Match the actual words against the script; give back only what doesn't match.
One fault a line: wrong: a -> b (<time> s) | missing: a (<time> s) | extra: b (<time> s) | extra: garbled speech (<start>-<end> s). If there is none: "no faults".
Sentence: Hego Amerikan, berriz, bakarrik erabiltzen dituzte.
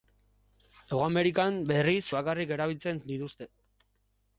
no faults